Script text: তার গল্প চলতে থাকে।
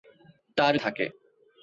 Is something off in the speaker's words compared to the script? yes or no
yes